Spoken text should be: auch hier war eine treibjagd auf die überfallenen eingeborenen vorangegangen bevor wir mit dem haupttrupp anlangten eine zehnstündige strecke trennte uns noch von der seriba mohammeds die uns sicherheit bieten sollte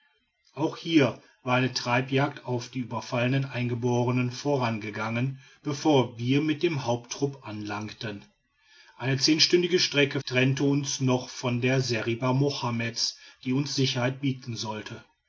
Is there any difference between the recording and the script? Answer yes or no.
no